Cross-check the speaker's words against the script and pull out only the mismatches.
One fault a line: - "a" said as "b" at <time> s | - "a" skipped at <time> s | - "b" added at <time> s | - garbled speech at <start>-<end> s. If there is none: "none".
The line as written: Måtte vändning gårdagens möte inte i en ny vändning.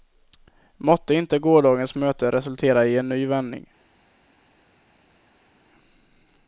- "vändning" said as "inte" at 1.1 s
- "inte" said as "resultera" at 2.3 s